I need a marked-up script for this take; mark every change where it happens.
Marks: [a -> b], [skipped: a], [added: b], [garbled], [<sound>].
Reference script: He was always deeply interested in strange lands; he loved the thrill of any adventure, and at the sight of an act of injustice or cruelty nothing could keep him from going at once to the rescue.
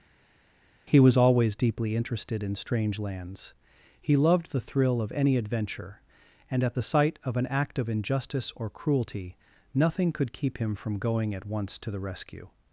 He was always deeply interested in strange lands; he loved the thrill of any adventure, and at the sight of an act of injustice or cruelty nothing could keep him from going at once to the rescue.